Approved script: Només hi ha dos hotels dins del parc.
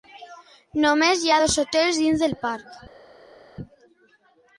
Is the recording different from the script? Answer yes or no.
no